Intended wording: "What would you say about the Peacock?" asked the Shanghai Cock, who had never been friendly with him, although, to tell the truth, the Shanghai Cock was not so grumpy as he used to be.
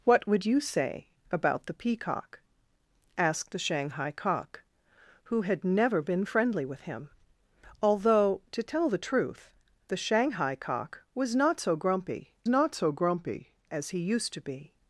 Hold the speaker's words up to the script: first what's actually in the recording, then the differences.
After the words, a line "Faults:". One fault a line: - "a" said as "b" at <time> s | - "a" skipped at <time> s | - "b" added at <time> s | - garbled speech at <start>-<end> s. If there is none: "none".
"What would you say about the Peacock?" asked the Shanghai Cock, who had never been friendly with him, although, to tell the truth, the Shanghai Cock was not so grumpy not so grumpy as he used to be.
Faults:
- "not so grumpy" added at 12.5 s